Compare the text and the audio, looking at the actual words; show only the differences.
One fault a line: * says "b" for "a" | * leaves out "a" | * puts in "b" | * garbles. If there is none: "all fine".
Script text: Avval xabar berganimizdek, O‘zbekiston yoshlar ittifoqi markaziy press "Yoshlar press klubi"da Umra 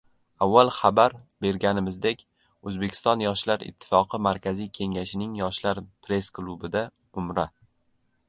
* says "kengashining" for "press"